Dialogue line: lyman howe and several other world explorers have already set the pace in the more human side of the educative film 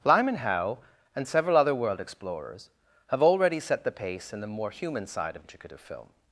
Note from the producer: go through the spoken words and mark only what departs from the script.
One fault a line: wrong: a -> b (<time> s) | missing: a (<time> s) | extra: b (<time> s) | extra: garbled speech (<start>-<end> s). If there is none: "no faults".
missing: the (5.4 s)